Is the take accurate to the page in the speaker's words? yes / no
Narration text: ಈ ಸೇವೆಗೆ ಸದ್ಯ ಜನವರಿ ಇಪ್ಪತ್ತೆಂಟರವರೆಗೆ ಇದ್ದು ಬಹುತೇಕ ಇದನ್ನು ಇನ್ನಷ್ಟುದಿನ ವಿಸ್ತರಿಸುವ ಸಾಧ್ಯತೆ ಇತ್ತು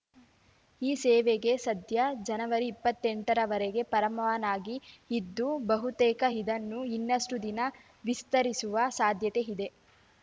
no